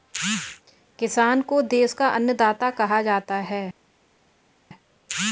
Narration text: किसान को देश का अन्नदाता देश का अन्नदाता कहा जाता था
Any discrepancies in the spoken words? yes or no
yes